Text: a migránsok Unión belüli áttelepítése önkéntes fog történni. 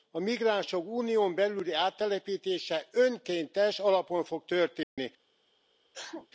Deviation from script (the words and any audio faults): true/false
true